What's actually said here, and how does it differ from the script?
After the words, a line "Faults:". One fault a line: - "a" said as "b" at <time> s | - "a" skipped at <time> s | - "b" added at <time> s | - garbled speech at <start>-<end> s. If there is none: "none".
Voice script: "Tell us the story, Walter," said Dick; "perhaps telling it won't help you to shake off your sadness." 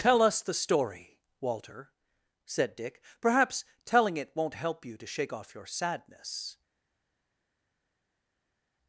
"Tell us the story, Walter," said Dick; "perhaps telling it won't help you to shake off your sadness."
Faults:
none